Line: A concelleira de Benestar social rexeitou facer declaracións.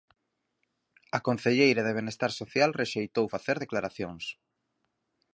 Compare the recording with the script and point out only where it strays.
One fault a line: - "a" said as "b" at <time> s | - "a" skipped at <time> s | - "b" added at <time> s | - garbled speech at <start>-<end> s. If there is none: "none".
none